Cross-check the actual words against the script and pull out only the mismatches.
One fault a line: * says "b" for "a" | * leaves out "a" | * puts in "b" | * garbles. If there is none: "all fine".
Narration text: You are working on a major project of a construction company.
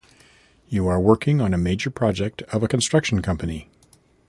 all fine